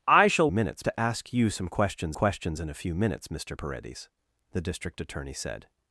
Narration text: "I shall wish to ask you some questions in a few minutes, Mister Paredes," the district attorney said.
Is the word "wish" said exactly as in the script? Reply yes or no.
no